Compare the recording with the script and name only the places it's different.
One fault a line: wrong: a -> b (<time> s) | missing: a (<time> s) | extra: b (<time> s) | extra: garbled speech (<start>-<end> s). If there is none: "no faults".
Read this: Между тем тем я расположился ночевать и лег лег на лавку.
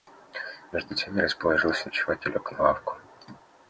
missing: тем (1.1 s)
missing: лег (2.5 s)